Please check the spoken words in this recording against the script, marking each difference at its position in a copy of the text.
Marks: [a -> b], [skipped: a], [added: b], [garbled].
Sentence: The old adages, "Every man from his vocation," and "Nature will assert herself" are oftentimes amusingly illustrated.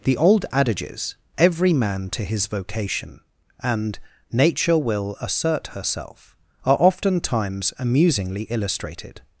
The old adages, "Every man [from -> to] his vocation," and "Nature will assert herself" are oftentimes amusingly illustrated.